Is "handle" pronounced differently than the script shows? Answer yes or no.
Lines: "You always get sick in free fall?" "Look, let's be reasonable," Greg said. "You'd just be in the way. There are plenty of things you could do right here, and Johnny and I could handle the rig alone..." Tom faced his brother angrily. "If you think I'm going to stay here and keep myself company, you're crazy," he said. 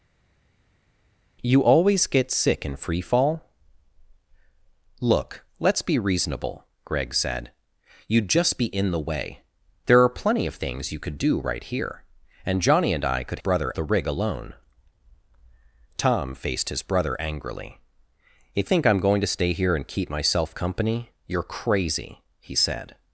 yes